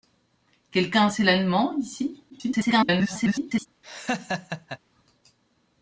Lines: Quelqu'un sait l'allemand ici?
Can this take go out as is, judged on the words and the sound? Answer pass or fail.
fail